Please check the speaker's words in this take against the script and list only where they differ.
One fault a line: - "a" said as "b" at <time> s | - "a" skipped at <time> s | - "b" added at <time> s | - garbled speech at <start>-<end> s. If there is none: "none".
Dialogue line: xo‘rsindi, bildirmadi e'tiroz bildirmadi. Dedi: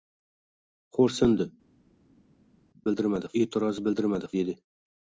none